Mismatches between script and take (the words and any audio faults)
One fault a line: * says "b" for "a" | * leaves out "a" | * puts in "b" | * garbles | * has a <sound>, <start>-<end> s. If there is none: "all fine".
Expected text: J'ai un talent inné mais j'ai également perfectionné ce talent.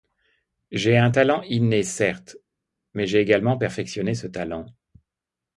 * puts in "certes"